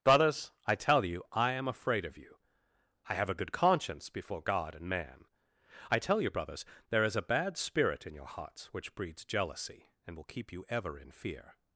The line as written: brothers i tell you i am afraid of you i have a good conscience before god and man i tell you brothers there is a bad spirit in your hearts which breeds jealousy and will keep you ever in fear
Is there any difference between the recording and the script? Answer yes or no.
no